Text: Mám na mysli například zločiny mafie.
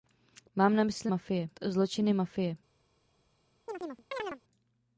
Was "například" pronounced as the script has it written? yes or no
no